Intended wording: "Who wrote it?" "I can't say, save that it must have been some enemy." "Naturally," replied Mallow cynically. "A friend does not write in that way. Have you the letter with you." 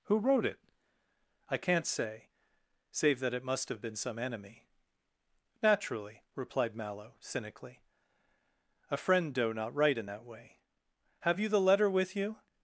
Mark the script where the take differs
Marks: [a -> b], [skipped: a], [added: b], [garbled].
"Who wrote it?" "I can't say, save that it must have been some enemy." "Naturally," replied Mallow cynically. "A friend [does -> doe] not write in that way. Have you the letter with you."